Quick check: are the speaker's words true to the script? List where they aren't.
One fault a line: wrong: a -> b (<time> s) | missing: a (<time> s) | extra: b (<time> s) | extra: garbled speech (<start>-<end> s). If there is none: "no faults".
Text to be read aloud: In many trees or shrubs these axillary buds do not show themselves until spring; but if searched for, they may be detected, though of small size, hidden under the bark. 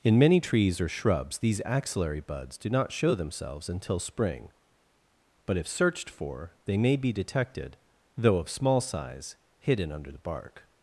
no faults